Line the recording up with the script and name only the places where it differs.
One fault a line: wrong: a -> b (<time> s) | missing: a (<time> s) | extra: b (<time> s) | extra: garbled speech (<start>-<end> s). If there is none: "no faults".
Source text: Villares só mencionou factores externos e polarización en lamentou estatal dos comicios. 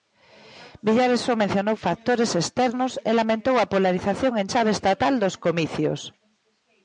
extra: lamentou a (3.2 s)
wrong: lamentou -> chave (4.5 s)